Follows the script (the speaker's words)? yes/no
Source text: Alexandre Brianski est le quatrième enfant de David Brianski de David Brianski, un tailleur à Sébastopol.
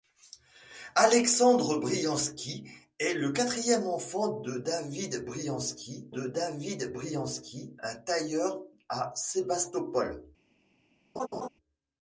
yes